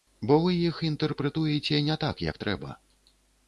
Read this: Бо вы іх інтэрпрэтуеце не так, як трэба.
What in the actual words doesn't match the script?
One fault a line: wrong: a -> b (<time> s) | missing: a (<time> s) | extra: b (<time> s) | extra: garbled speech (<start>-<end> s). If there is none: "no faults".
no faults